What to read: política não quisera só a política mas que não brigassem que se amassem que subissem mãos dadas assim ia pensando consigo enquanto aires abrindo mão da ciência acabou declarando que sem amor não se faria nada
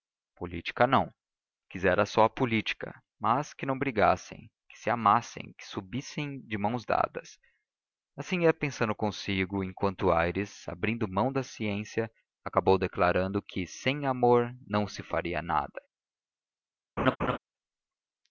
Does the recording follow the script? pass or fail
fail